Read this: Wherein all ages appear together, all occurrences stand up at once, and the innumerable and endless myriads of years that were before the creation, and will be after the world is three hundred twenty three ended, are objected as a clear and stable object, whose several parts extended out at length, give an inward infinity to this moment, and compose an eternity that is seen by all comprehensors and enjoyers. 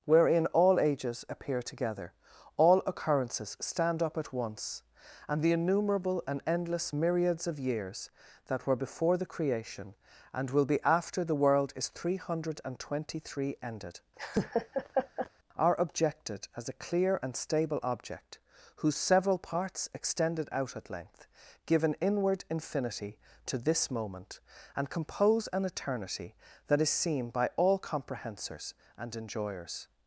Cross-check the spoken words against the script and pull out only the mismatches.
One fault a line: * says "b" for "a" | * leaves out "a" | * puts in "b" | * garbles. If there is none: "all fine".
all fine